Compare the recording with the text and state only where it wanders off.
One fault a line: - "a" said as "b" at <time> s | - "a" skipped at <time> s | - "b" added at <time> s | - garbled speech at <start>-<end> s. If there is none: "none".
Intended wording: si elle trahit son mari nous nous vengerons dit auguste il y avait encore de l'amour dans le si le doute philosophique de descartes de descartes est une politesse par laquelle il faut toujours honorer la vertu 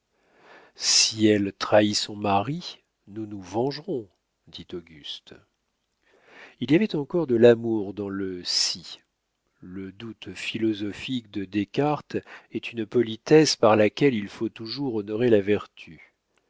- "de descartes" skipped at 12.1 s